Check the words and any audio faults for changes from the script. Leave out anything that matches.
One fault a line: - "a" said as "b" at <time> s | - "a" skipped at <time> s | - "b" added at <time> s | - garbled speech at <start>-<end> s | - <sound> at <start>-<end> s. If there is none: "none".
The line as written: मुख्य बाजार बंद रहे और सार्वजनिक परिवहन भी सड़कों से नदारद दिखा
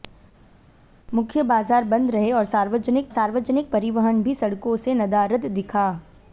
- "सार्वजनिक" added at 3.1 s